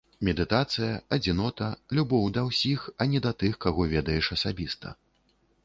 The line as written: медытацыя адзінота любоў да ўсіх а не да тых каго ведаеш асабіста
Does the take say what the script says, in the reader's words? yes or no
yes